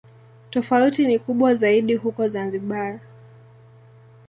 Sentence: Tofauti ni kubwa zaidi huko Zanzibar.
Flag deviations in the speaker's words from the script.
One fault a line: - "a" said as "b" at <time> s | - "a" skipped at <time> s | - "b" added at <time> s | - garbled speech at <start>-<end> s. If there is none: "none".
none